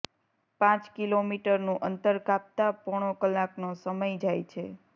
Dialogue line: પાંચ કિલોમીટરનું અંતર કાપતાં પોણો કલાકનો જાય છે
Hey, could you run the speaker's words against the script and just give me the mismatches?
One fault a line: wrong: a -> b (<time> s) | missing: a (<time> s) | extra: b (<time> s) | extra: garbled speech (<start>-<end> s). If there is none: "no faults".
extra: સમય (3.8 s)